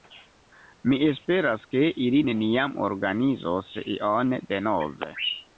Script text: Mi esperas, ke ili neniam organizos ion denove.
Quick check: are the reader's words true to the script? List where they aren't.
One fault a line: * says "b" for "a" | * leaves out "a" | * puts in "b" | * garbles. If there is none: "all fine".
all fine